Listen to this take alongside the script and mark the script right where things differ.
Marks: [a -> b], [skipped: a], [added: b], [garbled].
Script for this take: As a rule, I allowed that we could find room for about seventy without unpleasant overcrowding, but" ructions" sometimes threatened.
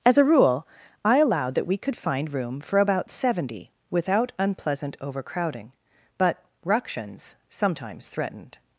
As a rule, I allowed that we could find room for about seventy without unpleasant overcrowding, but" ructions" sometimes threatened.